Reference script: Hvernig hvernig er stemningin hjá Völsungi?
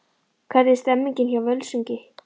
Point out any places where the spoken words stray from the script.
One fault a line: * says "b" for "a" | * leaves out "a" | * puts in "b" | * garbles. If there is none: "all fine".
* leaves out "hvernig"